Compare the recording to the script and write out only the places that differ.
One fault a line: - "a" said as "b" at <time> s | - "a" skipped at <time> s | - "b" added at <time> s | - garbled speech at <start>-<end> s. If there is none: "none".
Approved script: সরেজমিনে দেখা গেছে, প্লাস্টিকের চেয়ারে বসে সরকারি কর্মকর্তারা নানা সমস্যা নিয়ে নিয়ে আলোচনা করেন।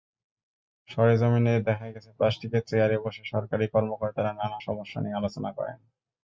- "নিয়ে" skipped at 5.2 s